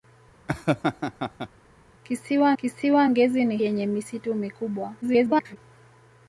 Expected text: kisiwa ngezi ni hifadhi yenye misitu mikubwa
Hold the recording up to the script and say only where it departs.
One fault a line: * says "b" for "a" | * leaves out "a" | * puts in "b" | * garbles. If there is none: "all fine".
* puts in "kisiwa"
* leaves out "hifadhi"
* garbles